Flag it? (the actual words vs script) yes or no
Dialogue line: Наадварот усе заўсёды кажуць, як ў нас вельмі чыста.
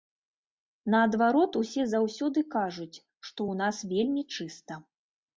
yes